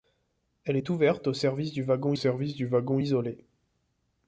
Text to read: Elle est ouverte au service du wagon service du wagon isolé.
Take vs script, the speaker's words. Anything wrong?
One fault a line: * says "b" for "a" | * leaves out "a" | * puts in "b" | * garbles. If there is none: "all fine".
all fine